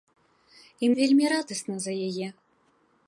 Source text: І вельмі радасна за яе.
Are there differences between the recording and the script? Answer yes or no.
no